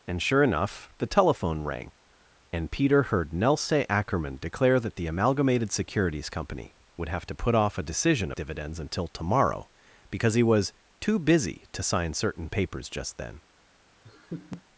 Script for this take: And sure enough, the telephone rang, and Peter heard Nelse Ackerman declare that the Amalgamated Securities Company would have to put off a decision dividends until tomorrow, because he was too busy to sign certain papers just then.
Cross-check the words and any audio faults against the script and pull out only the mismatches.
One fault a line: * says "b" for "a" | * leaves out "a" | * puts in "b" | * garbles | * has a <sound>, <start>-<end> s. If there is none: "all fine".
* has a laugh, 14.0-14.6 s